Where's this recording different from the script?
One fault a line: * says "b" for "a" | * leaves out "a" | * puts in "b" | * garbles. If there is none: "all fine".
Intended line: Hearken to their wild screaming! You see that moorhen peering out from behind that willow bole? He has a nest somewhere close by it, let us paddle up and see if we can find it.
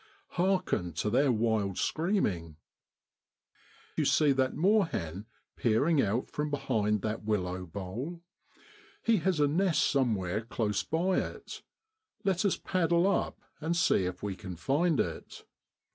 all fine